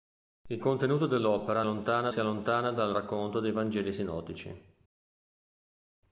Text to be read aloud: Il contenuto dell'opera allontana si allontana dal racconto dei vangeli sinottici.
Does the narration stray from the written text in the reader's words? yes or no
no